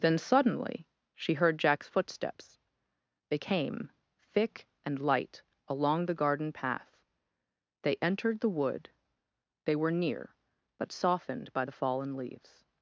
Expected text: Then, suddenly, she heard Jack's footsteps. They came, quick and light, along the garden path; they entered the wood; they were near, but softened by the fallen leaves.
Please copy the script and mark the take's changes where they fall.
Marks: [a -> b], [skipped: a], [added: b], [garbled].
Then, suddenly, she heard Jack's footsteps. They came, [quick -> thick] and light, along the garden path; they entered the wood; they were near, but softened by the fallen leaves.